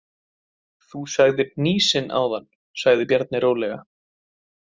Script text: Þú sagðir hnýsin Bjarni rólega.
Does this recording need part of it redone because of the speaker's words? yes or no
yes